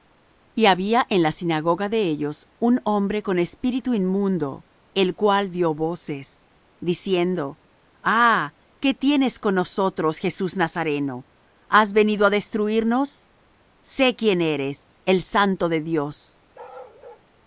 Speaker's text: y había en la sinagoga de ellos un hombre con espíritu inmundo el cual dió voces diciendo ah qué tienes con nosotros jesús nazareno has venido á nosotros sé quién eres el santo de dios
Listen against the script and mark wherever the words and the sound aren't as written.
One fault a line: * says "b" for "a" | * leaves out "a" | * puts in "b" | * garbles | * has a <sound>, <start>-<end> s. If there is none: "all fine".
* says "destruirnos" for "nosotros"
* has a bark, 16.5-17.3 s